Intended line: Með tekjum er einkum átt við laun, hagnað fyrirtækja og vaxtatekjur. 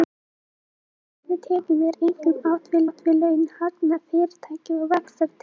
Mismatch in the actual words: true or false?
true